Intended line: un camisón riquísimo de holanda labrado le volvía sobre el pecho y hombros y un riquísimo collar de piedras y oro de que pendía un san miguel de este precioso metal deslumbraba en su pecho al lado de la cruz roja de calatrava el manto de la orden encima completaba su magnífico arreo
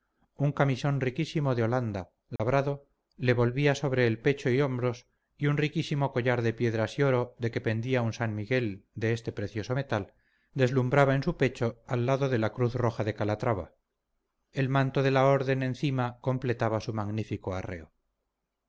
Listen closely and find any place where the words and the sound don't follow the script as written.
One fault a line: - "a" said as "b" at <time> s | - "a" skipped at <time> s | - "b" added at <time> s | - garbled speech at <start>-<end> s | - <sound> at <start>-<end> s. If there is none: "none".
- dropout at 2.4-2.4 s